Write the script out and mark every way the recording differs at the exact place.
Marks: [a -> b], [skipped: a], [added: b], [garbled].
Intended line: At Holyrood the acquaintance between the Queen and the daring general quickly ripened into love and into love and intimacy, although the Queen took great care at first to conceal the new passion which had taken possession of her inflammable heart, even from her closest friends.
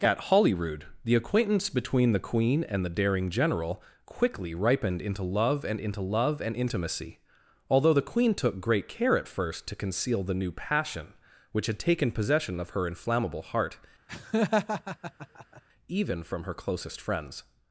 At Holyrood the acquaintance between the Queen and the daring general quickly ripened into love and into love and intimacy, although the Queen took great care at first to conceal the new passion which had taken possession of her inflammable heart, even from her closest friends.